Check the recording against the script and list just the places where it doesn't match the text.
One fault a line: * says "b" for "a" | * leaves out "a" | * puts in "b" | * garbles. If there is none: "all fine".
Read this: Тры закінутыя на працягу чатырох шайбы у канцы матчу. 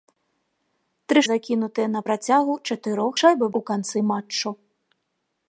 all fine